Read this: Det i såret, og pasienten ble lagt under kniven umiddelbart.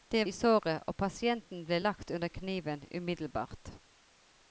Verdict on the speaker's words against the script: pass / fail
pass